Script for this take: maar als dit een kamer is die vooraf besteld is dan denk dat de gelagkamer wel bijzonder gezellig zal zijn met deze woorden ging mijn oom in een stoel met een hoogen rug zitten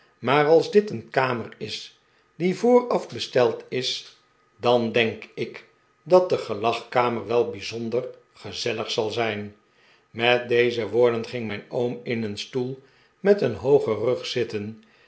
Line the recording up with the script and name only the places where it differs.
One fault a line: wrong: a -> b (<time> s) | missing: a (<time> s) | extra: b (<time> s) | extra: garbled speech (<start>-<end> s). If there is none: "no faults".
extra: ik (5.3 s)